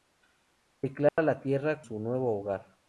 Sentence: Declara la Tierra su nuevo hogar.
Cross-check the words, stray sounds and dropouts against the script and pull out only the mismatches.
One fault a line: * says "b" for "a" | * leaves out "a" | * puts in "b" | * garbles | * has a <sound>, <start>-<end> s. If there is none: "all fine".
* has a dropout, 1.1-1.2 s